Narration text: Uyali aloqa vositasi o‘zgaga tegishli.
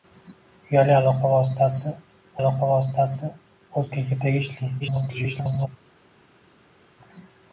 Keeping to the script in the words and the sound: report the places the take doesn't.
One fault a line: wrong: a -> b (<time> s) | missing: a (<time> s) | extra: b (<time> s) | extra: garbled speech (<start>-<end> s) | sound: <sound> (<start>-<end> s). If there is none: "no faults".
extra: aloqa vositasi (2.4 s)
extra: garbled speech (4.8-5.7 s)